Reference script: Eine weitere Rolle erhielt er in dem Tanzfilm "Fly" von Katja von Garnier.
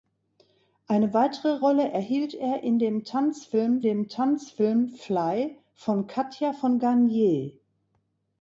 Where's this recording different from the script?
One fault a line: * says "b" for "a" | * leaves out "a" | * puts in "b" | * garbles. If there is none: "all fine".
* puts in "dem Tanzfilm"